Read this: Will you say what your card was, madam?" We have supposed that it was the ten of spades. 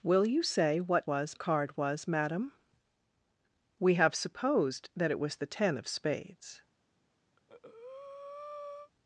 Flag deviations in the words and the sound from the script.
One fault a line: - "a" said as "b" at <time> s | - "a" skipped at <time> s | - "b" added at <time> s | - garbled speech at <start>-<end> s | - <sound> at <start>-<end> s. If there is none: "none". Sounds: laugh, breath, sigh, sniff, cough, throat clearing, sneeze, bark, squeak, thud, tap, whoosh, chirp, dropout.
- "your" said as "was" at 1.1 s
- breath at 7.4-8.9 s